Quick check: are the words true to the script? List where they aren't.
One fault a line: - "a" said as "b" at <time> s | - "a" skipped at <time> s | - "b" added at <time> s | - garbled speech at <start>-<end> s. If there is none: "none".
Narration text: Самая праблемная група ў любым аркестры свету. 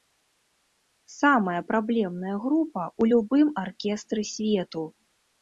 none